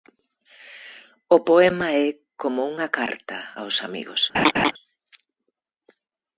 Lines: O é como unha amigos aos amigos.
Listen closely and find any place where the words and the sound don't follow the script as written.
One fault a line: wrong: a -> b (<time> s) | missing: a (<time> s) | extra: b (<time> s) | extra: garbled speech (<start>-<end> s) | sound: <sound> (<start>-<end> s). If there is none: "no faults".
extra: poema (1.5 s)
wrong: amigos -> carta (3.0 s)
sound: laugh (4.3-4.7 s)